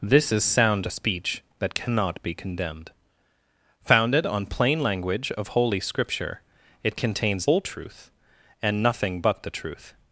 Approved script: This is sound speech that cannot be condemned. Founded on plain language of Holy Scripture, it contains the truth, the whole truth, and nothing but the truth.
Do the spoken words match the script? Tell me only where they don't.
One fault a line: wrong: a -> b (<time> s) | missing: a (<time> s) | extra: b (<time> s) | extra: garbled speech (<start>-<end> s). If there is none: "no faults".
missing: the truth the (7.5 s)